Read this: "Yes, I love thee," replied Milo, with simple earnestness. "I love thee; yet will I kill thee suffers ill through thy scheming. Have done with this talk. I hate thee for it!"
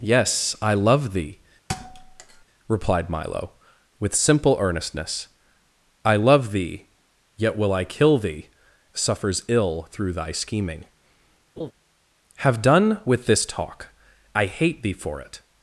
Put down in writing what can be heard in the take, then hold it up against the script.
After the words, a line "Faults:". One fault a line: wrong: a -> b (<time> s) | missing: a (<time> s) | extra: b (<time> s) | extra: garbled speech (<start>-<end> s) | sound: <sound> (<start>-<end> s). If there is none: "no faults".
"Yes, I love thee," replied Milo, with simple earnestness. "I love thee; yet will I kill thee suffers ill through thy scheming. Have done with this talk. I hate thee for it!"
Faults:
sound: thud (1.7-2.5 s)
sound: laugh (11.6-11.7 s)